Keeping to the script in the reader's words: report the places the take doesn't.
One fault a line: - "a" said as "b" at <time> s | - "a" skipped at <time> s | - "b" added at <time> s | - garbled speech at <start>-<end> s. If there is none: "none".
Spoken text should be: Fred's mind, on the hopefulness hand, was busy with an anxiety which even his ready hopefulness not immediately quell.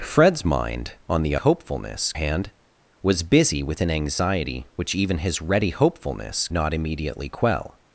none